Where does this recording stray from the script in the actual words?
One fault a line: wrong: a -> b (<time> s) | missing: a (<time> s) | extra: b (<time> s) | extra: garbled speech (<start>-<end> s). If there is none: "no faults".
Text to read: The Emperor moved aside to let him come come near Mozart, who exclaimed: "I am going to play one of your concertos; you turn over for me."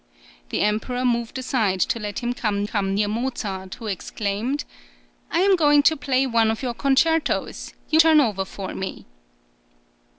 no faults